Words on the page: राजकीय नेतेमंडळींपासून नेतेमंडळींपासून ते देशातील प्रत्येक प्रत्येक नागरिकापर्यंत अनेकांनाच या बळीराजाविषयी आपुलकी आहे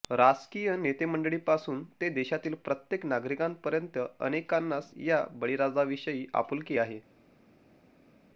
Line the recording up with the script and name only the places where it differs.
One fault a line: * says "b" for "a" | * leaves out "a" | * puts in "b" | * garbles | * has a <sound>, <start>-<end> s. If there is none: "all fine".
* leaves out "नेतेमंडळींपासून"
* leaves out "प्रत्येक"